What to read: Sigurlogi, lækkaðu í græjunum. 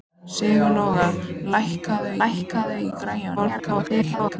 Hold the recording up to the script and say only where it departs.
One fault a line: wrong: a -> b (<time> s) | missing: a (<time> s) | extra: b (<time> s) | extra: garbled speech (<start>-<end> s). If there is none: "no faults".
extra: lækkaðu (2.2 s)
extra: garbled speech (3.4-4.4 s)